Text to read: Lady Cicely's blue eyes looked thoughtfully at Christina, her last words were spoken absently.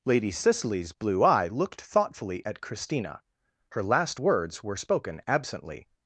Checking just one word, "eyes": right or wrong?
wrong